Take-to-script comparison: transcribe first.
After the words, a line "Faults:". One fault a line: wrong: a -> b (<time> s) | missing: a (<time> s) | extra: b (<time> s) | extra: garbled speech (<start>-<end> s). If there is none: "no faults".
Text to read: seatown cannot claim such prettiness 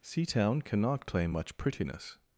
seatown cannot claim much prettiness
Faults:
wrong: such -> much (1.3 s)